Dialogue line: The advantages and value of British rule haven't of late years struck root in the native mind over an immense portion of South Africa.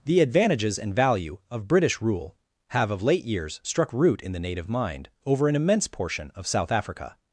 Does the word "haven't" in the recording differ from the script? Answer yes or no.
yes